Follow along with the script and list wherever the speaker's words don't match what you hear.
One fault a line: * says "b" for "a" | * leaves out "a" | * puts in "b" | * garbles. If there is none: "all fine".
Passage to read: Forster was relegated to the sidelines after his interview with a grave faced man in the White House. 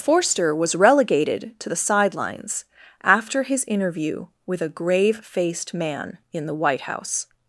all fine